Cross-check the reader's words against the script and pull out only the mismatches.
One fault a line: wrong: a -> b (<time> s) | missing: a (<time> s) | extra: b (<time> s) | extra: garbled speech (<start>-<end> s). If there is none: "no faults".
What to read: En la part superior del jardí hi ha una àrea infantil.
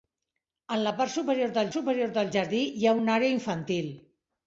extra: superior del (1.7 s)